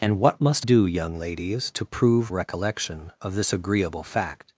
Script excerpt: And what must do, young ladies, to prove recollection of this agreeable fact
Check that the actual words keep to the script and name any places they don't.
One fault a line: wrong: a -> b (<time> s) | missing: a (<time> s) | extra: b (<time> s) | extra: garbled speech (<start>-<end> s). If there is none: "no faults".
no faults